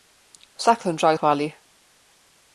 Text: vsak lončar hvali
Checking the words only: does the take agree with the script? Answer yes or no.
yes